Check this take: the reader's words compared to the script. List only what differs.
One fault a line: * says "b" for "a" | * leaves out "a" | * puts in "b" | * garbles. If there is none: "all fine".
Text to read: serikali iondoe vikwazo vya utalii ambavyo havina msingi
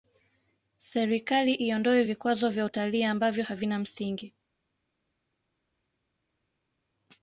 all fine